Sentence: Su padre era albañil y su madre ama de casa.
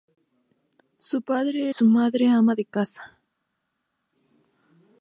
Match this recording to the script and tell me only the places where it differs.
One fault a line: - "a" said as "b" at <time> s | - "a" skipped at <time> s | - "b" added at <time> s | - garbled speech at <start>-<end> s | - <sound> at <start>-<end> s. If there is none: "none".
- "era albañil y" skipped at 1.7 s